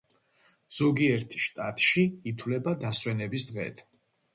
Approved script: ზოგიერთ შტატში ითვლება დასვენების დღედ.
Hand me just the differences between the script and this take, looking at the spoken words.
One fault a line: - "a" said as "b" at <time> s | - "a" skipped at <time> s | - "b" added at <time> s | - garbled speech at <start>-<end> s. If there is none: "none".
none